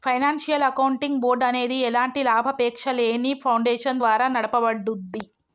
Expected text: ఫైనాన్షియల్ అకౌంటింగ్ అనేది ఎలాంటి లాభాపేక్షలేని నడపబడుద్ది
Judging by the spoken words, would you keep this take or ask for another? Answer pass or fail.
fail